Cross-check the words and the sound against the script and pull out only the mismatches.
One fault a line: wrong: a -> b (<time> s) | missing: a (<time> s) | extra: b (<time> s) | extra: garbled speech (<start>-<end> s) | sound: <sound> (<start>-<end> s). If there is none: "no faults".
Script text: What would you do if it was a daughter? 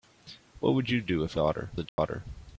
wrong: was -> daughter (1.3 s)
sound: dropout (1.9-2.0 s)